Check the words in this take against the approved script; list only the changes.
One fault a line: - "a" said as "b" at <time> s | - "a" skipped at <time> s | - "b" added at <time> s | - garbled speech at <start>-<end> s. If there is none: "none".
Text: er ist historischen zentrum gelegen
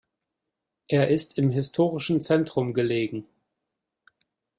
- "im" added at 1.4 s